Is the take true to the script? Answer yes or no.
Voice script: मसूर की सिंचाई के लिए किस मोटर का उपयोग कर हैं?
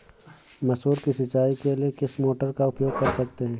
no